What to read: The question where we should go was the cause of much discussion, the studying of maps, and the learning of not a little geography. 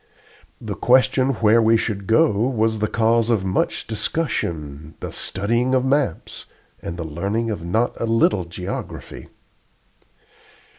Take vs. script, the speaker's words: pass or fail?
pass